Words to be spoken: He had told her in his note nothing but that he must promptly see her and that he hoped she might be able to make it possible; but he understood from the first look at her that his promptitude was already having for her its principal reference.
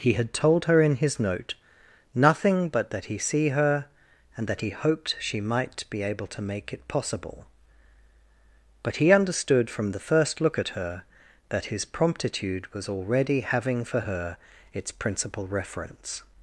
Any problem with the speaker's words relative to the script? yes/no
yes